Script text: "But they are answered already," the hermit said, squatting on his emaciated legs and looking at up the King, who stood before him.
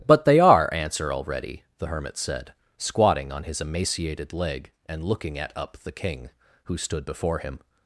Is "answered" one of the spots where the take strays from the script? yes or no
yes